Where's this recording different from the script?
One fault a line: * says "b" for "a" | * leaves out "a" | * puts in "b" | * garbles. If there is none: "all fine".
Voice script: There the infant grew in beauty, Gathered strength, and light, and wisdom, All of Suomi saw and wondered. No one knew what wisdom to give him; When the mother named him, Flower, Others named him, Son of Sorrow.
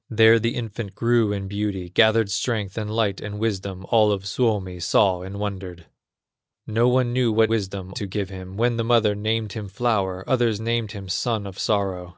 all fine